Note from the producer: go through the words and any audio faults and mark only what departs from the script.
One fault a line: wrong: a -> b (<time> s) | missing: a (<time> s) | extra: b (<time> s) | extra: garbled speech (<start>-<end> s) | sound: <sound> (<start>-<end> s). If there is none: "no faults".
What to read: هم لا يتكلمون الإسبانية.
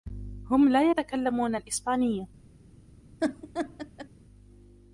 sound: laugh (3.2-4.1 s)